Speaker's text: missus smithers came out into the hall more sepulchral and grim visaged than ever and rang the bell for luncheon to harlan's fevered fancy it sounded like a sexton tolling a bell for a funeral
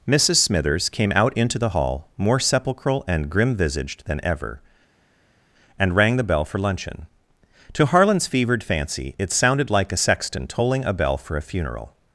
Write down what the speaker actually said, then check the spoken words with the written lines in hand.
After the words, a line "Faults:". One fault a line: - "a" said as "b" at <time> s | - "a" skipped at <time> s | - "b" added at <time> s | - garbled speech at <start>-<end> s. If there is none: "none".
missus smithers came out into the hall more sepulchral and grim visaged than ever and rang the bell for luncheon to harlan's fevered fancy it sounded like a sexton tolling a bell for a funeral
Faults:
none